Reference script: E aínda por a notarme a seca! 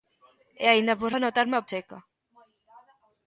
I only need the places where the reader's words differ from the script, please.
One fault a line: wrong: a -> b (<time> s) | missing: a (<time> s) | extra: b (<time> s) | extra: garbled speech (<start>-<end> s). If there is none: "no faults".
no faults